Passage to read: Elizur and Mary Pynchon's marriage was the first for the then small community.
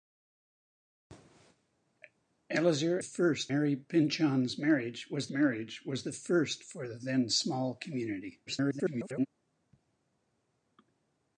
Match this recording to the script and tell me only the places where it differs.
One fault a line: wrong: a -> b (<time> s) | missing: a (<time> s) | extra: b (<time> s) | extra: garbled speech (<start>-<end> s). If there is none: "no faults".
wrong: and -> first (3.0 s)
extra: marriage was (5.3 s)
extra: garbled speech (8.5-9.3 s)